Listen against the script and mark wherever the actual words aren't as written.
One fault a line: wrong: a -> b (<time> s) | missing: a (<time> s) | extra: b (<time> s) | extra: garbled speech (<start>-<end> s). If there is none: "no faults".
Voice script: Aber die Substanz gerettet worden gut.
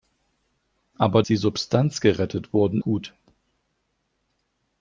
no faults